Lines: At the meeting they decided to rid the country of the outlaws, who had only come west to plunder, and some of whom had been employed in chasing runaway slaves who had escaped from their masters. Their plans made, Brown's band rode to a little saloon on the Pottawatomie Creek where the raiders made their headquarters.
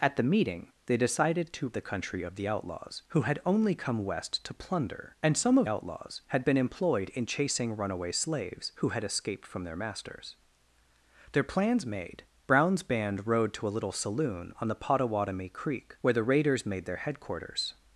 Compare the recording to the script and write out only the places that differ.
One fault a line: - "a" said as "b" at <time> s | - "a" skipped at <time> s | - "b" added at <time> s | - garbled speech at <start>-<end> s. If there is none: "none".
- "rid" skipped at 1.7 s
- "whom" said as "outlaws" at 5.7 s